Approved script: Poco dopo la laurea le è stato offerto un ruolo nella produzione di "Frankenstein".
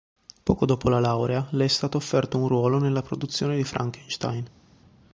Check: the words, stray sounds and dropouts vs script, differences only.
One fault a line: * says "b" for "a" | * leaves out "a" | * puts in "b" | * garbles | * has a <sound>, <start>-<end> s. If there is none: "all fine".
all fine